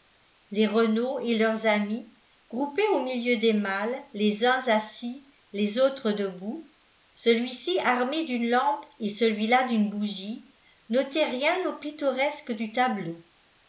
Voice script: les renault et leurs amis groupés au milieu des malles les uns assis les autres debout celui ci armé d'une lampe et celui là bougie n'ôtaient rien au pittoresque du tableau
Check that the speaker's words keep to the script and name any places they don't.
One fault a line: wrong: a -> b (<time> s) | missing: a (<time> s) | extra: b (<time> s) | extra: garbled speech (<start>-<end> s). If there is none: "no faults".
extra: d'une (9.7 s)